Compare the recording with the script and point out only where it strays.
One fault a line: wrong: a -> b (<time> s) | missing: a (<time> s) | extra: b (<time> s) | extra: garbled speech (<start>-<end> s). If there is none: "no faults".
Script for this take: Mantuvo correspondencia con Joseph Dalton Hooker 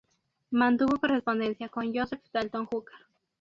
no faults